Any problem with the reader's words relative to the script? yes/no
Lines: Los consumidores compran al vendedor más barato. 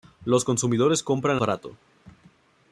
yes